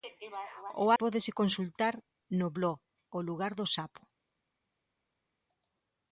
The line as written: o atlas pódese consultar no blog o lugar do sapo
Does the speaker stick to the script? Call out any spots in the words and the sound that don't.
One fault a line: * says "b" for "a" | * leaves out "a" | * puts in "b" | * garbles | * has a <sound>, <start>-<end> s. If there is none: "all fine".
* leaves out "atlas"